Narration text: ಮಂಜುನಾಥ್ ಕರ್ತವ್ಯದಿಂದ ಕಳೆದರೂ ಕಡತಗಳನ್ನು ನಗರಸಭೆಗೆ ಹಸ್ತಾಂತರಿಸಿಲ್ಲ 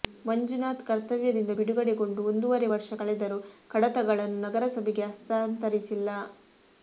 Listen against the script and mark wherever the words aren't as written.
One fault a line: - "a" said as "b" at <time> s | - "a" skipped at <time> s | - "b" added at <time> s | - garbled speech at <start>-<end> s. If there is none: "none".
- "ಬಿಡುಗಡೆಗೊಂಡು ಒಂದೂವರೆ ವರ್ಷ" added at 1.6 s